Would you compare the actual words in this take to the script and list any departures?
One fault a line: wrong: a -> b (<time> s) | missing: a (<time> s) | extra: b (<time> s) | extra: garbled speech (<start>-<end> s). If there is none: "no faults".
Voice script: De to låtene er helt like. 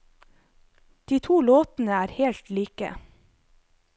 no faults